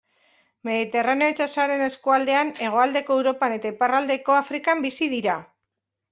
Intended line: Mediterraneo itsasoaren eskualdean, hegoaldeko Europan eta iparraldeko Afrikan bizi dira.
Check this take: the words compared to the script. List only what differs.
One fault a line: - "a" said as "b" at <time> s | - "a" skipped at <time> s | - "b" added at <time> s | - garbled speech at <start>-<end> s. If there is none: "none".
none